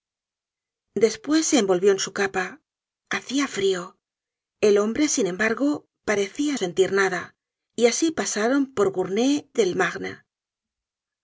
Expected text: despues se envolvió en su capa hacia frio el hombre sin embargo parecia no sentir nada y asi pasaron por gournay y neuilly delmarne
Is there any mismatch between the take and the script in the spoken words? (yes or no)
yes